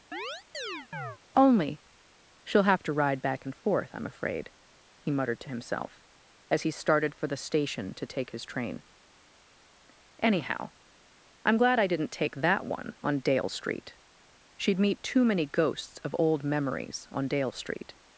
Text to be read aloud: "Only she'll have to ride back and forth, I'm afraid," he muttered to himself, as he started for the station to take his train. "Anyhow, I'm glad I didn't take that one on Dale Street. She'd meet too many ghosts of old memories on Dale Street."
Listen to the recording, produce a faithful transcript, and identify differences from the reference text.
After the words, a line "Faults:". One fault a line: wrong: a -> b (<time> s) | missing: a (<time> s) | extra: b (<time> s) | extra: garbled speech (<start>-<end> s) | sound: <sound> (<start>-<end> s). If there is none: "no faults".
"Only she'll have to ride back and forth, I'm afraid," he muttered to himself, as he started for the station to take his train. "Anyhow, I'm glad I didn't take that one on Dale Street. She'd meet too many ghosts of old memories on Dale Street."
Faults:
sound: chirp (0.1-1.2 s)